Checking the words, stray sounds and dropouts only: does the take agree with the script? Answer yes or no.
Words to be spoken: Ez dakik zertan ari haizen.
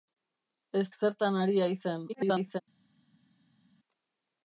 no